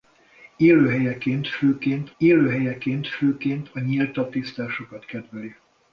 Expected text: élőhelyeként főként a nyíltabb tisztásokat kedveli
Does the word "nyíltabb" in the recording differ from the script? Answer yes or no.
no